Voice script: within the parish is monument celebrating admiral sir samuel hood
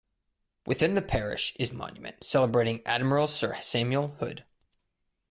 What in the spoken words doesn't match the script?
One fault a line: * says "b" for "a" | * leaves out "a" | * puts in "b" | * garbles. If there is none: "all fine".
all fine